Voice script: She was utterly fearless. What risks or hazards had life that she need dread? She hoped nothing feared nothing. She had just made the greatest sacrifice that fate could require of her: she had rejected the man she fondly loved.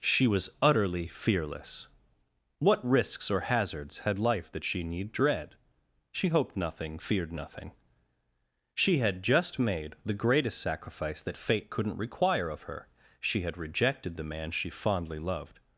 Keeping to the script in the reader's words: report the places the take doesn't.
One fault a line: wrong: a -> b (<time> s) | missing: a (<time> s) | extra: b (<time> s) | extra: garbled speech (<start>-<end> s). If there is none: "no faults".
wrong: could -> couldn't (11.7 s)